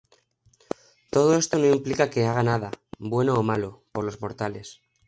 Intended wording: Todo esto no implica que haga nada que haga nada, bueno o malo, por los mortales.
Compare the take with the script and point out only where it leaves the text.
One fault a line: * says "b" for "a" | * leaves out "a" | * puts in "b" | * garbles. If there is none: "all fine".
* leaves out "que haga nada"